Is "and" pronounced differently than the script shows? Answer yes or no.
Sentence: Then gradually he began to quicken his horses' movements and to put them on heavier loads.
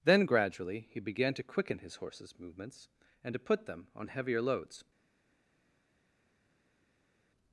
no